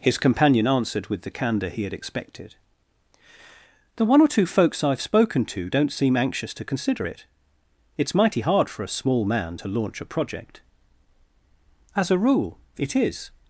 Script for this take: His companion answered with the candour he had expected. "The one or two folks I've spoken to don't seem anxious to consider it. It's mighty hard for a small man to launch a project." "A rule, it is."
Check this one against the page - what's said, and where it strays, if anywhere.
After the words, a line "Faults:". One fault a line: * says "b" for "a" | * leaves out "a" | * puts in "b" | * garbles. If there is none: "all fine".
His companion answered with the candour he had expected. "The one or two folks I've spoken to don't seem anxious to consider it. It's mighty hard for a small man to launch a project." "As a rule, it is."
Faults:
* puts in "As"